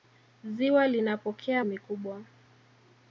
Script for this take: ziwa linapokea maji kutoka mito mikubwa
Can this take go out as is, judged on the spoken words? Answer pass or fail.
fail